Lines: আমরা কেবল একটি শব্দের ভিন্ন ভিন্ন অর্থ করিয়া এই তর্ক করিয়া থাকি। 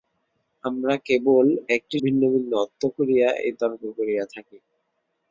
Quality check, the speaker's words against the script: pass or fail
fail